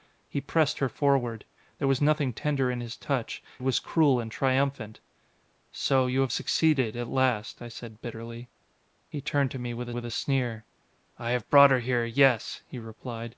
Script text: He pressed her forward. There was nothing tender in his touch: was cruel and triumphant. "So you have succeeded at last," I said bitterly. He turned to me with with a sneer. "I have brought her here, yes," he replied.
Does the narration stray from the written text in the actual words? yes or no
no